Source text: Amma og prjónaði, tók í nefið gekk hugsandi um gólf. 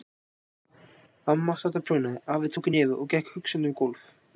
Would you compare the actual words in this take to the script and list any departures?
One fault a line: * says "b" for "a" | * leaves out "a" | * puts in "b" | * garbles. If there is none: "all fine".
* puts in "sat"
* puts in "afi"
* puts in "og"